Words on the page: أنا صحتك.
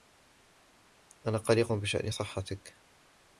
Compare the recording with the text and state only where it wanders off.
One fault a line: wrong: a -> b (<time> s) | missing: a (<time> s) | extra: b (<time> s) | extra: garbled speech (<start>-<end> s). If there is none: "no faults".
extra: قلق بشأن (1.4 s)